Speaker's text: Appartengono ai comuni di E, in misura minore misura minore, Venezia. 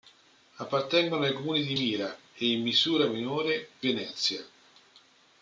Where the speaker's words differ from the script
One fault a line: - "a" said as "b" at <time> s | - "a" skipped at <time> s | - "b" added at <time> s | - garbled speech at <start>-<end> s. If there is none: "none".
- "Mira" added at 1.7 s
- "misura minore" skipped at 3.7 s